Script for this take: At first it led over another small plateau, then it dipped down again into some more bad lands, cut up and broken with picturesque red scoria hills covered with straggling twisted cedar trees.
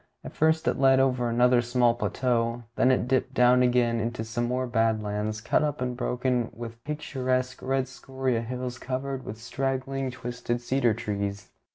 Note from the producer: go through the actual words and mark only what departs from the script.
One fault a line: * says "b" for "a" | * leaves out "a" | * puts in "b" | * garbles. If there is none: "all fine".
all fine